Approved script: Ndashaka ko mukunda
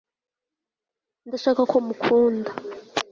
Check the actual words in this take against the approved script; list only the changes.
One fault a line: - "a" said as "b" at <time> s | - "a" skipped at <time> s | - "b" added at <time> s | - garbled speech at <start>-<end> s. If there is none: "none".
none